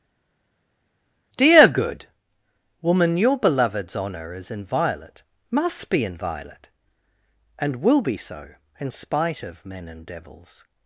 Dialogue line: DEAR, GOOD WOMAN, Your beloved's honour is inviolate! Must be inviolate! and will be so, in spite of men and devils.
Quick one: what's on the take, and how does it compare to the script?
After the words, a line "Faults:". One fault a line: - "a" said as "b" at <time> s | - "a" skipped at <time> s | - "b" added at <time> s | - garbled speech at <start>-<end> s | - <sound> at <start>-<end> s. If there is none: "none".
DEAR, GOOD WOMAN, Your beloved's honour is inviolate! Must be inviolate! and will be so, in spite of men and devils.
Faults:
none